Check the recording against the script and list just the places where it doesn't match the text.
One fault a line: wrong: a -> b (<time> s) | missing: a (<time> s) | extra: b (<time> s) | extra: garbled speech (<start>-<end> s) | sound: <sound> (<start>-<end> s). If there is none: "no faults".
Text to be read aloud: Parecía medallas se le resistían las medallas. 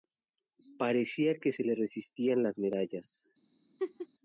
wrong: medallas -> que (1.4 s)
sound: laugh (3.8-4.1 s)